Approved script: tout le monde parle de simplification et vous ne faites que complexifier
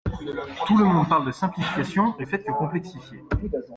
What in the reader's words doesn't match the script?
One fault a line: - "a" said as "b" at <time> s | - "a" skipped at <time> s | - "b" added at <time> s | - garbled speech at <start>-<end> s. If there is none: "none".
- "vous" skipped at 2.2 s